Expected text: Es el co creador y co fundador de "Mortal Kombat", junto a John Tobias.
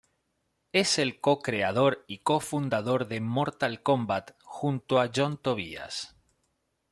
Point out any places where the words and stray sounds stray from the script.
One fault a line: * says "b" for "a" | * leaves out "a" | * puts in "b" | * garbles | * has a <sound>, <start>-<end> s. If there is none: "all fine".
all fine